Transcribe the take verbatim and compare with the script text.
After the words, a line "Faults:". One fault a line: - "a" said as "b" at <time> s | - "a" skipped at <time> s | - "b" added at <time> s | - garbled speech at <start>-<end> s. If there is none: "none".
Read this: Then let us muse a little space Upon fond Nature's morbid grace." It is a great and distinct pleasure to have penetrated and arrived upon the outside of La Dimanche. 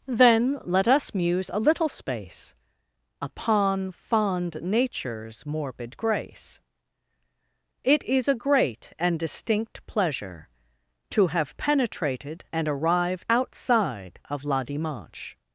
Then let us muse a little space Upon fond Nature's morbid grace." It is a great and distinct pleasure to have penetrated and arrived outside of La Dimanche.
Faults:
- "upon the" skipped at 13.3 s